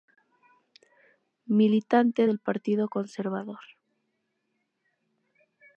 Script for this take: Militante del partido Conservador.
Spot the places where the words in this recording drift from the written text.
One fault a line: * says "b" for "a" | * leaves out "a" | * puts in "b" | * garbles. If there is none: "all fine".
all fine